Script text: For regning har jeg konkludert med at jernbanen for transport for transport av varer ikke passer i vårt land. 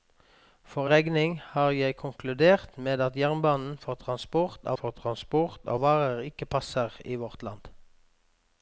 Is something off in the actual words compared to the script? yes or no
no